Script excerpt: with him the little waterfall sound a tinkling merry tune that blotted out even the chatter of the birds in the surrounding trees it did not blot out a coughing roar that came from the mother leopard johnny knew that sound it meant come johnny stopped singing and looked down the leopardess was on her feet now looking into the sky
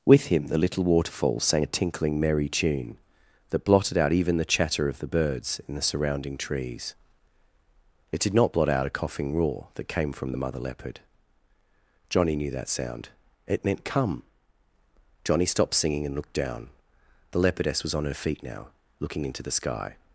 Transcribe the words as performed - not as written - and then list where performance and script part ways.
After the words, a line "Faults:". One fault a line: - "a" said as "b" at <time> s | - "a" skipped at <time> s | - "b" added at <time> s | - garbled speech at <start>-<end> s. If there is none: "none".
with him the little waterfall sang a tinkling merry tune that blotted out even the chatter of the birds in the surrounding trees it did not blot out a coughing roar that came from the mother leopard johnny knew that sound it meant come johnny stopped singing and looked down the leopardess was on her feet now looking into the sky
Faults:
- "sound" said as "sang" at 1.4 s